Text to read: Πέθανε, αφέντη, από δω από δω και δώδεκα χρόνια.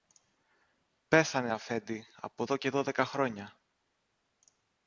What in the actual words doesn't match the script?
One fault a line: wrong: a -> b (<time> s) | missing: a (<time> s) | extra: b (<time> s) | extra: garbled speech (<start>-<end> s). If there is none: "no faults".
missing: από δω (2.6 s)